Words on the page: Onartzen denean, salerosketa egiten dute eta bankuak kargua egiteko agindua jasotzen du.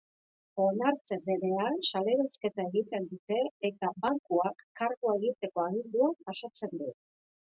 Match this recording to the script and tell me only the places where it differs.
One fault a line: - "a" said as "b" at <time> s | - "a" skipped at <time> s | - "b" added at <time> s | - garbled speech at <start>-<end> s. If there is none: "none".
none